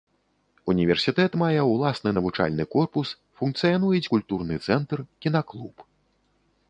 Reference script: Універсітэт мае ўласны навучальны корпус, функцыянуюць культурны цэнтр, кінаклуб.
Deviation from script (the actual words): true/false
false